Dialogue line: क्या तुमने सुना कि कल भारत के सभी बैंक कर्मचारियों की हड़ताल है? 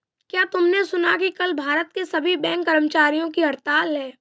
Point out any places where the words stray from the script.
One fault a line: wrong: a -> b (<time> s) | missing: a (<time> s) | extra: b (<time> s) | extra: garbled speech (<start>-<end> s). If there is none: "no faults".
no faults